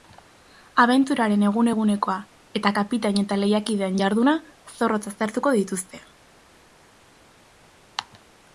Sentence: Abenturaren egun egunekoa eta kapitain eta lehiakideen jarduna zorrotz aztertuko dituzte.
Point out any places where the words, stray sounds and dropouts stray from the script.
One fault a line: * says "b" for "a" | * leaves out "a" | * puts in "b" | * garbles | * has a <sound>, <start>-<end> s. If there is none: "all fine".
all fine